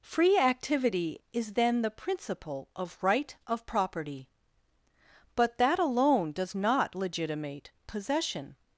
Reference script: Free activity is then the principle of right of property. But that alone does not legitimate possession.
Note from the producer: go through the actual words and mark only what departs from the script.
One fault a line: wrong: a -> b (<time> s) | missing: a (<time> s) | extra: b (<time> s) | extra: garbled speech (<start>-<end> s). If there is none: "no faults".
no faults